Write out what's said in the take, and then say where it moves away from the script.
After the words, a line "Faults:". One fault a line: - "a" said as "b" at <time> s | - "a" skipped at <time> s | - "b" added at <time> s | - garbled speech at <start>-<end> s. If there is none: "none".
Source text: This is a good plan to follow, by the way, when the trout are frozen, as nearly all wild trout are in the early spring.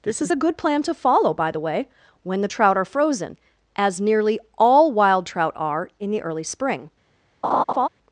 This is a good plan to follow, by the way, when the trout are frozen, as nearly all wild trout are in the early spring.
Faults:
none